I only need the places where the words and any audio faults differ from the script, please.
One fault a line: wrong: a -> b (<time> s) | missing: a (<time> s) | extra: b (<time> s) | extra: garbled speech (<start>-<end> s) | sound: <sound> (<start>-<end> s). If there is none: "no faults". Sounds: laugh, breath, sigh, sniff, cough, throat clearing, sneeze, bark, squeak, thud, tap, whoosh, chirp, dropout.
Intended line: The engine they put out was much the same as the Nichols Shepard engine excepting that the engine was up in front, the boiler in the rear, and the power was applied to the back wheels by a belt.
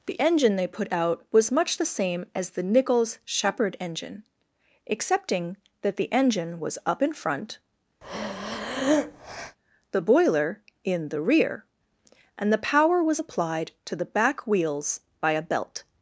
sound: breath (8.0-9.6 s)